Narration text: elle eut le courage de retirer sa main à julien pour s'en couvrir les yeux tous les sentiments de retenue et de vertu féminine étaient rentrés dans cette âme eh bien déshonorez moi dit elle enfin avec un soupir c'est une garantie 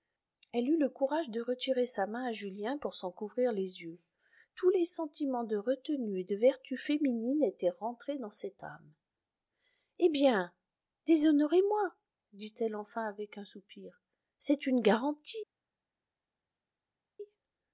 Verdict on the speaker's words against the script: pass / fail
pass